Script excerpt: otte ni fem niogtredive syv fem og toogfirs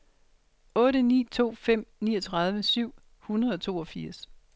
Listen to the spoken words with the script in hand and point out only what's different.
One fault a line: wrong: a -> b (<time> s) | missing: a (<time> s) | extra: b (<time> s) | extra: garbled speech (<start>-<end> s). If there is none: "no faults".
extra: to (1.2 s)
wrong: fem -> hundrede (3.2 s)